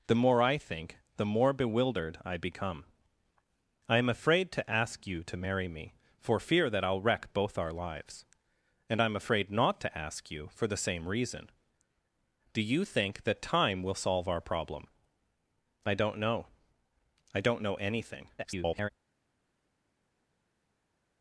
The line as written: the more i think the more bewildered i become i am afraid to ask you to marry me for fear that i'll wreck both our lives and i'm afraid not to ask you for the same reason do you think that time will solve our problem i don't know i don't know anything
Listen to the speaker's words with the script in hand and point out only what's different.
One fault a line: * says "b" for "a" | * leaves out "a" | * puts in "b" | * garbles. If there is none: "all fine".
* garbles